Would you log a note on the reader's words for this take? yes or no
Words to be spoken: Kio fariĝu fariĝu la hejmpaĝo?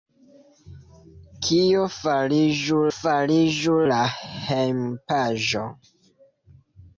no